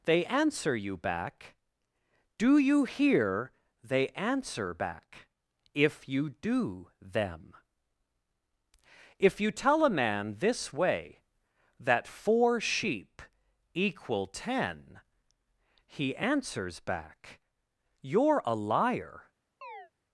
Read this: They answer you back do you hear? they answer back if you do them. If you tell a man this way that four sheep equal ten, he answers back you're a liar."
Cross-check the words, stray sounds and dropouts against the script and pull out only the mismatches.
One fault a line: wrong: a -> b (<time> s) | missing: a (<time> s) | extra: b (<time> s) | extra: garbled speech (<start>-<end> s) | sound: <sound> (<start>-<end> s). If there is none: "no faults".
sound: chirp (19.6-19.9 s)